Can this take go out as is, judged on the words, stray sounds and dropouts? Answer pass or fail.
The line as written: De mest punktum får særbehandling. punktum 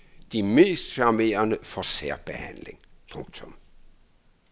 fail